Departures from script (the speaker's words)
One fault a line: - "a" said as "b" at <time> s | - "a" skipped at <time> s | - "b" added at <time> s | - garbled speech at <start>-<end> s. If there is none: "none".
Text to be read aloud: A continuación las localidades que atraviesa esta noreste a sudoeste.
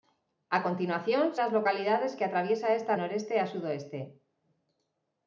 none